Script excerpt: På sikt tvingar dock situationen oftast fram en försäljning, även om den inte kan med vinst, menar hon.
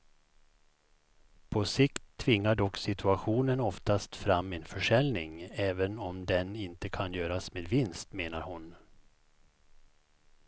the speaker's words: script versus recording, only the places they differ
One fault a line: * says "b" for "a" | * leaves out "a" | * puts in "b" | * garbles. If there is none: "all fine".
* puts in "göras"